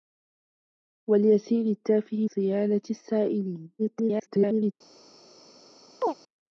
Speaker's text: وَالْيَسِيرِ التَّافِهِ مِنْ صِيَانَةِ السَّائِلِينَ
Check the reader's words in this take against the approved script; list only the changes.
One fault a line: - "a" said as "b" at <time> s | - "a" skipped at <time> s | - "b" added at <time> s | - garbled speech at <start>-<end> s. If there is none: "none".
- "مِنْ" skipped at 2.3 s
- garbled speech at 3.8-4.7 s